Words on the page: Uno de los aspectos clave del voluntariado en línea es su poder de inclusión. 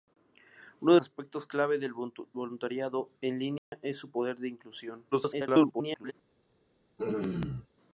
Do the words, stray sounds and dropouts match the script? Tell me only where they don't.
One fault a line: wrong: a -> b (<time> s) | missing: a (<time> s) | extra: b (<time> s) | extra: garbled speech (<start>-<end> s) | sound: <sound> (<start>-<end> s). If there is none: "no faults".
missing: los (1.0 s)
sound: dropout (3.6-3.7 s)
extra: garbled speech (5.1-6.1 s)
sound: throat clearing (7.0-7.7 s)